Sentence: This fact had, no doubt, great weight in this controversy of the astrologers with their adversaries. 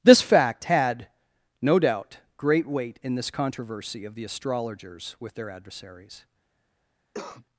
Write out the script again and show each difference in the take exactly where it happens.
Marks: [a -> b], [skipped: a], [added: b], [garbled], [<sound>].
This fact had, no doubt, great weight in this controversy of the astrologers with their adversaries. [cough]